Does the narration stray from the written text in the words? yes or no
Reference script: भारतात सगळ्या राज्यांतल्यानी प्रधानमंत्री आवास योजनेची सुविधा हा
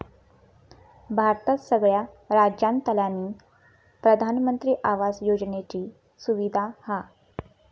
no